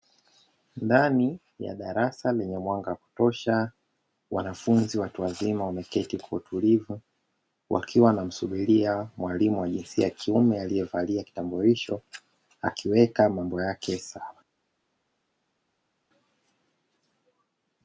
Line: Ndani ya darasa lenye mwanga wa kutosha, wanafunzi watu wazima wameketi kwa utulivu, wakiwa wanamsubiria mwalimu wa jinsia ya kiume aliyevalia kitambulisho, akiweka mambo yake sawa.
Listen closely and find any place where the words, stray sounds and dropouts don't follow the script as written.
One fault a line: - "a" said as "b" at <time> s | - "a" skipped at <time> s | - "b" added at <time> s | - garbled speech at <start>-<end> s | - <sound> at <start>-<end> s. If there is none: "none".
none